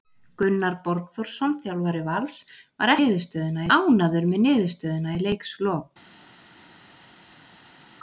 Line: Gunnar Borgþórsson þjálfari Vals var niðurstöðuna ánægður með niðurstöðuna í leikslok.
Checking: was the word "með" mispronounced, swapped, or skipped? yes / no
no